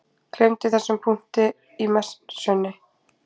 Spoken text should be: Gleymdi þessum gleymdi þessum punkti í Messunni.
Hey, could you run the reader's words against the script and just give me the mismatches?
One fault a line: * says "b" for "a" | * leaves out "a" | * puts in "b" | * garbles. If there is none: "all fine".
* leaves out "gleymdi þessum"